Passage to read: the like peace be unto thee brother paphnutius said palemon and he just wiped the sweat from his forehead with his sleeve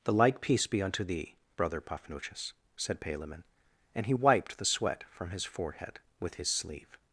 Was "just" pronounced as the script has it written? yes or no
no